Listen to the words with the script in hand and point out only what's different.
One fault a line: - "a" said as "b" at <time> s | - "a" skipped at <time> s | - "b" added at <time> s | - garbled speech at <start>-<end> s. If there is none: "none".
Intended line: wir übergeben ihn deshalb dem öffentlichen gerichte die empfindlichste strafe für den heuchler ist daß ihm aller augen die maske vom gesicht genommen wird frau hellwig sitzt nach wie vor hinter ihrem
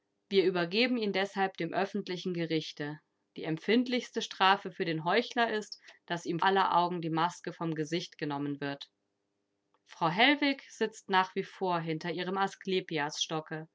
none